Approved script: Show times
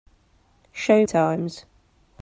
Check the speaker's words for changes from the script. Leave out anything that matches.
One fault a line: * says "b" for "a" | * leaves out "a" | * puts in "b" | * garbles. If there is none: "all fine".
all fine